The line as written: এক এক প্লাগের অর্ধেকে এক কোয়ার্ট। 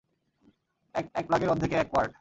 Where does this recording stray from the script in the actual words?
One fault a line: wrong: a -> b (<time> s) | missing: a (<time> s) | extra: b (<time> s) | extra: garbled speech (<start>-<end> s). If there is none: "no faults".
no faults